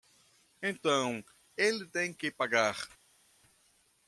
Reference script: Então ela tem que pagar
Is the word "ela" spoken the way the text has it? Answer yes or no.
no